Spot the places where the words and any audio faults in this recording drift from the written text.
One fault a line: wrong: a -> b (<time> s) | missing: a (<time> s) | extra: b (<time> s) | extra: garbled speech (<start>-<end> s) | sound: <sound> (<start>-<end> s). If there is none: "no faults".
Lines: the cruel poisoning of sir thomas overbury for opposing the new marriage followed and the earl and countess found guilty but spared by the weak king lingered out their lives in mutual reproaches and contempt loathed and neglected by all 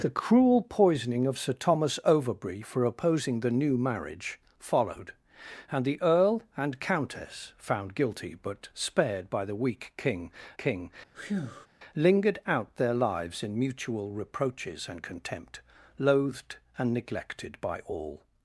extra: king (10.6 s)
sound: breath (11.1-11.7 s)